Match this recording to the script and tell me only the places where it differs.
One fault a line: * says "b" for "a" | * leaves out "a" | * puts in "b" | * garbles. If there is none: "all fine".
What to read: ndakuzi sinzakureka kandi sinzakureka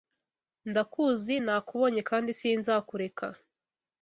* says "nakubonye" for "sinzakureka"